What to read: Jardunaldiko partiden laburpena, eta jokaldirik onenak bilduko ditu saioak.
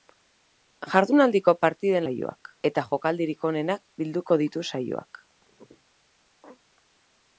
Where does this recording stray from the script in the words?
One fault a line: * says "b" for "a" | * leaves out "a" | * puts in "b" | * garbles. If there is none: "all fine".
* says "saioak" for "laburpena"